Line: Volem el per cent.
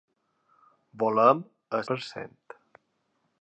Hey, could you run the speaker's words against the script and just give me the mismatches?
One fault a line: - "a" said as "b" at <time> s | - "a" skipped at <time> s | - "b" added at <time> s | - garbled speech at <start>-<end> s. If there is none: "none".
none